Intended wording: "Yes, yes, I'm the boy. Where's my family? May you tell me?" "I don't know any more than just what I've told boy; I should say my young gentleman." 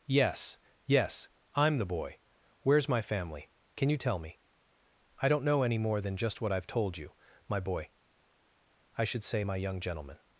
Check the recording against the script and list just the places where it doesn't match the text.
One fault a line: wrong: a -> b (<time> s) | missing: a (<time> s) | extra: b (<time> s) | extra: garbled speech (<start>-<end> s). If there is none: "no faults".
wrong: May -> Can (3.8 s)
extra: you my (7.0 s)